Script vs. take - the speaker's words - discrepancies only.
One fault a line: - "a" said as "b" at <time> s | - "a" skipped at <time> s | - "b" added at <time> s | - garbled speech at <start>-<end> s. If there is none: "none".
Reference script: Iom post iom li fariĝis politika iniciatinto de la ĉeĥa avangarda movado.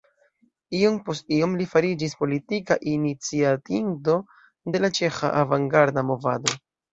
none